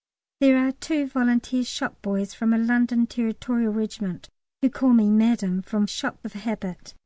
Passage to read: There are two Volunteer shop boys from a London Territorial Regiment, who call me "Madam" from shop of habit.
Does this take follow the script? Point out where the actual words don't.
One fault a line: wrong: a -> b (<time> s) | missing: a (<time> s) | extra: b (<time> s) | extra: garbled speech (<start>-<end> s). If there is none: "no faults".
no faults